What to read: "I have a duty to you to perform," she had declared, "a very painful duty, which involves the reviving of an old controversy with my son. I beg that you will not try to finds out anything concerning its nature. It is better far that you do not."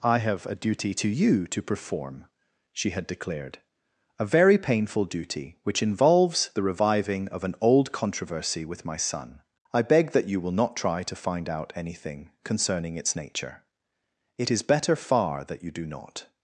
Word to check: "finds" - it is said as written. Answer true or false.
false